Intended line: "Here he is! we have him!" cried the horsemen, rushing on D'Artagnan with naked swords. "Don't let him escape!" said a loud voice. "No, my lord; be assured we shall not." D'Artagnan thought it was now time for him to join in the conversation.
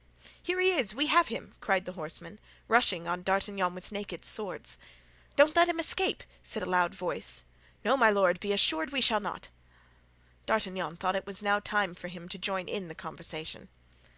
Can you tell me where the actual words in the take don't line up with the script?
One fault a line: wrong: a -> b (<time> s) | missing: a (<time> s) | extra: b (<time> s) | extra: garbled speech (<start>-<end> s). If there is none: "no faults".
no faults